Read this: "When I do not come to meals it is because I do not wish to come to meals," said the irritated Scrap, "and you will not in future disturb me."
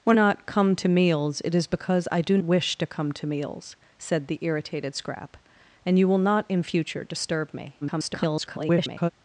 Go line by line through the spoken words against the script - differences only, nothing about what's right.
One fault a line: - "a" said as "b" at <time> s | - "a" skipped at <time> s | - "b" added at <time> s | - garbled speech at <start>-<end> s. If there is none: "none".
- "I do" skipped at 0.2 s
- "not" skipped at 2.4 s
- garbled speech at 7.8-9.1 s